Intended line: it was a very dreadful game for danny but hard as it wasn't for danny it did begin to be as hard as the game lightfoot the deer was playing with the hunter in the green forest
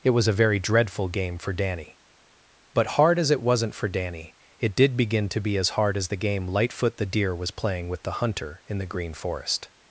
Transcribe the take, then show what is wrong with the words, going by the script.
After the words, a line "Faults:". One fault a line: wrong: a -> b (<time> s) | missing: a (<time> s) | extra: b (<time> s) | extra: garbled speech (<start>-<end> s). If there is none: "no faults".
it was a very dreadful game for danny but hard as it wasn't for danny it did begin to be as hard as the game lightfoot the deer was playing with the hunter in the green forest
Faults:
no faults